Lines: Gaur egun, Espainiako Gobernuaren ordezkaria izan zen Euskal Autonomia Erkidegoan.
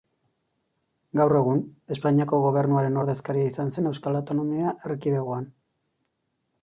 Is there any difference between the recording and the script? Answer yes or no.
no